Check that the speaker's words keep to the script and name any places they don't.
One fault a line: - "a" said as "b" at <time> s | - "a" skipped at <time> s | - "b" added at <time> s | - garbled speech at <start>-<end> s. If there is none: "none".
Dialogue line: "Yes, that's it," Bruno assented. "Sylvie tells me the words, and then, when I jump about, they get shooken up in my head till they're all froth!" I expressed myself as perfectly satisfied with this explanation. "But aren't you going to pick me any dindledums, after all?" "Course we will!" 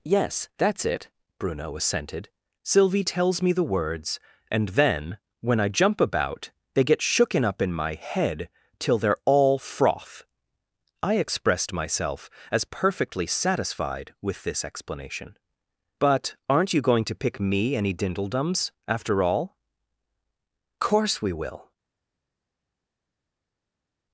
none